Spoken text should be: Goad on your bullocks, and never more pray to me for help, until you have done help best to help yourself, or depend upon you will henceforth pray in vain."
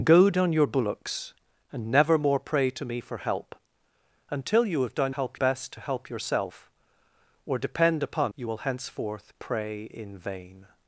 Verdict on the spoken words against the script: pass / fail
pass